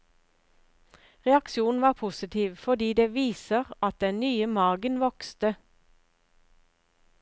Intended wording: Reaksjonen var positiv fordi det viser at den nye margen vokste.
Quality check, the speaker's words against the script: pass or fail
pass